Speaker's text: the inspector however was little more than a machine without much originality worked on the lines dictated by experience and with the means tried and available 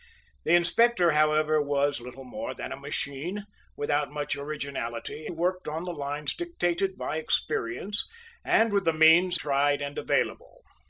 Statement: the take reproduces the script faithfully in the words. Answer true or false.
true